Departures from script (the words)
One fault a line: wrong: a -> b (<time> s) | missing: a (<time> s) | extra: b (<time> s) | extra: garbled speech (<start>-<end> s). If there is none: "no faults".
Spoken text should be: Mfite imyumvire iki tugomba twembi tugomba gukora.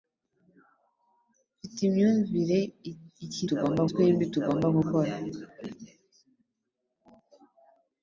no faults